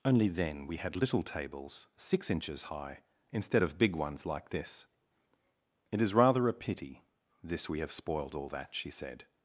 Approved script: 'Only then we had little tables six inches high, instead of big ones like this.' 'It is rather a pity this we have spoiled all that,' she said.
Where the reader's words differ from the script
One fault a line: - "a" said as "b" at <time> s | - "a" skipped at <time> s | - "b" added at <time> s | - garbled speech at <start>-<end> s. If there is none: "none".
none